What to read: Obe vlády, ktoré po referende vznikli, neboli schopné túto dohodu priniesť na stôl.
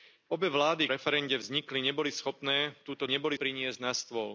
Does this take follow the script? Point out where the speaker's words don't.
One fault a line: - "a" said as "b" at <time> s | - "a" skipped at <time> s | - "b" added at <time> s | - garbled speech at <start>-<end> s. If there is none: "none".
- "ktoré po" skipped at 0.9 s
- "dohodu" said as "neboli" at 3.0 s